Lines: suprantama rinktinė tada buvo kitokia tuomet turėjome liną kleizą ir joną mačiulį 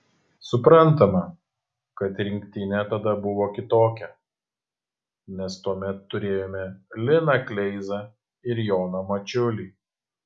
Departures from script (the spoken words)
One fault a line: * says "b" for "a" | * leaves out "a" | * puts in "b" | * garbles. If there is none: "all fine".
* puts in "kad"
* puts in "nes"